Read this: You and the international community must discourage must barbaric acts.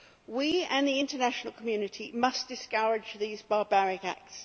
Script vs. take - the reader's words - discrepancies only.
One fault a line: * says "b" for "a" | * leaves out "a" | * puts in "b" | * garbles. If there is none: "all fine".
* says "We" for "You"
* says "these" for "must"